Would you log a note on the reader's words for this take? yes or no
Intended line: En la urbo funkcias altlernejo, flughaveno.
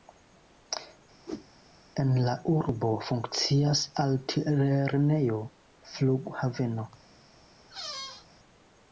no